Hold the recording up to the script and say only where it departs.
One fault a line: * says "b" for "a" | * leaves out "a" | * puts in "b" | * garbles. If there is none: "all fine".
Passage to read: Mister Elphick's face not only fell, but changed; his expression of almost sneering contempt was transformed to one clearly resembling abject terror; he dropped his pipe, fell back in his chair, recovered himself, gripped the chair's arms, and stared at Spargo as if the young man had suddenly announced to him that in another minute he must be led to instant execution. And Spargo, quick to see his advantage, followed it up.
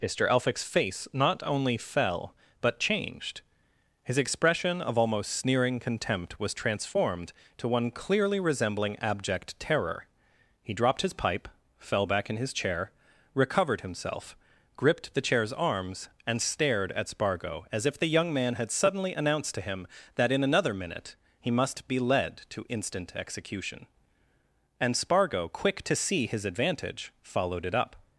all fine